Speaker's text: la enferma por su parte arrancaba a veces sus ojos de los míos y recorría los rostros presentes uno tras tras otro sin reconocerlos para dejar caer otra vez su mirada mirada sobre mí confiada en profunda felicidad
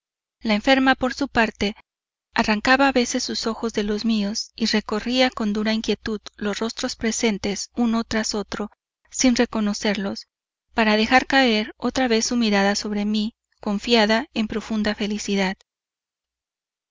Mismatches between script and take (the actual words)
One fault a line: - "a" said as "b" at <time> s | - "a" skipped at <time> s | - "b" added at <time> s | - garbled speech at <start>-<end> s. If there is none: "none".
- "con dura inquietud" added at 5.3 s
- "tras" skipped at 8.3 s
- "mirada" skipped at 12.7 s